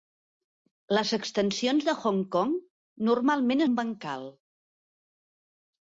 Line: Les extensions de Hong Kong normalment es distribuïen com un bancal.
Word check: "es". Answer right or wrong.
wrong